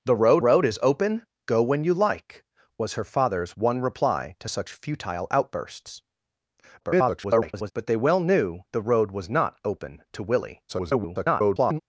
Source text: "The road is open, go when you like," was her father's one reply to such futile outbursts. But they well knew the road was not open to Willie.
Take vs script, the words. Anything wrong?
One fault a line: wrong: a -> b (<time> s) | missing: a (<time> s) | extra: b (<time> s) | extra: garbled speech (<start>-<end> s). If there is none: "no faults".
extra: road (0.4 s)
extra: garbled speech (6.8-7.7 s)
extra: garbled speech (10.7-11.8 s)